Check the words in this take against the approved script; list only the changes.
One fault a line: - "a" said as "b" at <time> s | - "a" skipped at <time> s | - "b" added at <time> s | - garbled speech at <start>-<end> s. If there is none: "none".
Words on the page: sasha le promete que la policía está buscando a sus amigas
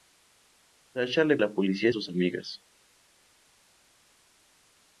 - "promete que" skipped at 1.4 s
- "está buscando" skipped at 1.9 s